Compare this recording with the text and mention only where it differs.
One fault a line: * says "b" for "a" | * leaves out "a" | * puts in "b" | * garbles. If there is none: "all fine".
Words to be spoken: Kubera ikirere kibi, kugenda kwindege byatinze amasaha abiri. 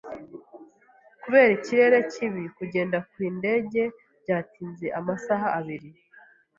all fine